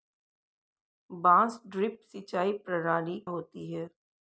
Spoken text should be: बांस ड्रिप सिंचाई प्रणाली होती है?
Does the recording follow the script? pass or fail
pass